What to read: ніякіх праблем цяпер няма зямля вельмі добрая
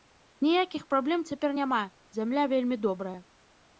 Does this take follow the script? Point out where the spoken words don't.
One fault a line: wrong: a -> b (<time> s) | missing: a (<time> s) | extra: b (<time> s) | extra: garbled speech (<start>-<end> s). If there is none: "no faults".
no faults